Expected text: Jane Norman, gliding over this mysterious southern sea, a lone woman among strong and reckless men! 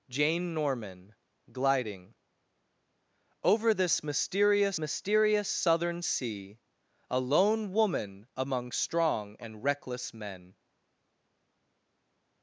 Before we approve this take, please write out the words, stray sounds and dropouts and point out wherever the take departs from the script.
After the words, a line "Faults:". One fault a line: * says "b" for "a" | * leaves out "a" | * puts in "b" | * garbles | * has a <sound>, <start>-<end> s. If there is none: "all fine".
Jane Norman, gliding over this mysterious mysterious southern sea, a lone woman among strong and reckless men!
Faults:
* puts in "mysterious"